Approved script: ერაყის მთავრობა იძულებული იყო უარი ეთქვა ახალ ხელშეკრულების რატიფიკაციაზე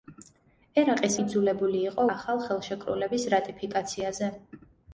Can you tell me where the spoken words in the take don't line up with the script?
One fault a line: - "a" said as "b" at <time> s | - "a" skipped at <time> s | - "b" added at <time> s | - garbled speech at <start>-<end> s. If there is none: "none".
- "მთავრობა" skipped at 1.2 s
- "უარი ეთქვა" skipped at 2.0 s